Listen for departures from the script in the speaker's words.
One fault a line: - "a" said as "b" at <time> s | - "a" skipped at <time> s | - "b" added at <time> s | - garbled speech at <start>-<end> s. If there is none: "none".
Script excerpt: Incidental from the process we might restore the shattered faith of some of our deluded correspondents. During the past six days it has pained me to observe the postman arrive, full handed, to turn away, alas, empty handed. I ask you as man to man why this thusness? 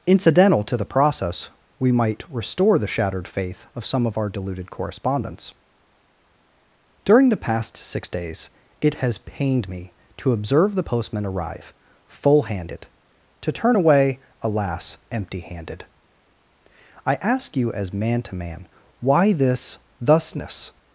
- "from" said as "to" at 0.6 s